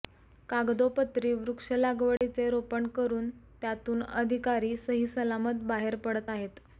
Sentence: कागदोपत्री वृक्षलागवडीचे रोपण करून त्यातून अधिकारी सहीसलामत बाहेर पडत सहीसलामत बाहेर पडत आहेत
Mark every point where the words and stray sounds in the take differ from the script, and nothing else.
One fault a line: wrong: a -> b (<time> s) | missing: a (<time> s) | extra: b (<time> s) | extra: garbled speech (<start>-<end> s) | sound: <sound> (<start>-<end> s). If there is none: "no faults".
sound: dropout (2.2-2.2 s)
missing: सहीसलामत बाहेर पडत (6.3 s)